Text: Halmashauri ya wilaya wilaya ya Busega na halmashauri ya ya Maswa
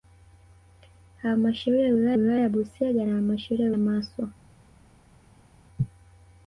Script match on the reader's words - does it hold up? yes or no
yes